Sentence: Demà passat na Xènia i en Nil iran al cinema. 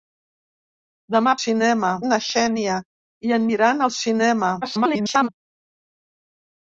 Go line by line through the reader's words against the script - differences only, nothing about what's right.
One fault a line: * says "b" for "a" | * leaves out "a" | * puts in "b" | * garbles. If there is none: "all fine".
* says "cinema" for "passat"
* leaves out "Nil"
* garbles